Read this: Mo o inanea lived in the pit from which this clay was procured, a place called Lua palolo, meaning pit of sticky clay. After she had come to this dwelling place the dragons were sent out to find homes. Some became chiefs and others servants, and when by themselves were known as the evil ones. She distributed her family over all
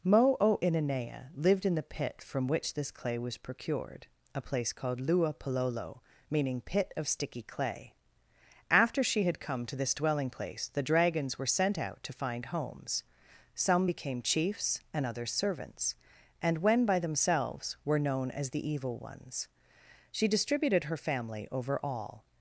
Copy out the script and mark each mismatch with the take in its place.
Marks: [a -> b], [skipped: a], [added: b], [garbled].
Mo o inanea lived in the pit from which this clay was procured, a place called Lua palolo, meaning pit of sticky clay. After she had come to this dwelling place the dragons were sent out to find homes. Some became chiefs and others servants, and when by themselves were known as the evil ones. She distributed her family over all